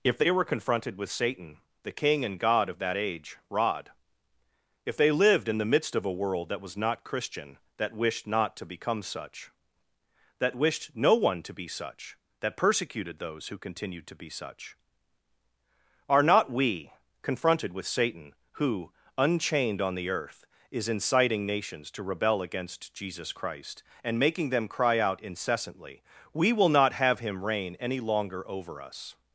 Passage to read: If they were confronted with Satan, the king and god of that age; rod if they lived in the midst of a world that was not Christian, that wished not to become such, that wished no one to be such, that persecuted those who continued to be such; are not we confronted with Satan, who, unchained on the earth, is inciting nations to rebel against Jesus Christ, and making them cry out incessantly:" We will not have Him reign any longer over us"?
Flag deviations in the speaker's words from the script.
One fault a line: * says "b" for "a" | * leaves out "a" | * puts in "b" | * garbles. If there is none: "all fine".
all fine